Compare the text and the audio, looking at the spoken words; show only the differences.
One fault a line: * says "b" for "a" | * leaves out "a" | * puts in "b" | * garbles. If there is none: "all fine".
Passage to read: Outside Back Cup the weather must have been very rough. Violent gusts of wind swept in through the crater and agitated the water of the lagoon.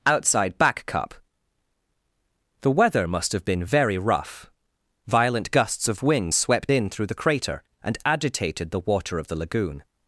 all fine